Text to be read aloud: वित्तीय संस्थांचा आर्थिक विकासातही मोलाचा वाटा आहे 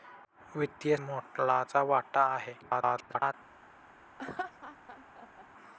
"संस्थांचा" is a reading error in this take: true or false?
true